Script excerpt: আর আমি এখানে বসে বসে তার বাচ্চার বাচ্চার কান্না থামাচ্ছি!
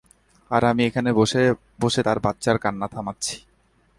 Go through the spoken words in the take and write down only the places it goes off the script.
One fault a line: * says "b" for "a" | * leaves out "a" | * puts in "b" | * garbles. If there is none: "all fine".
* leaves out "বাচ্চার"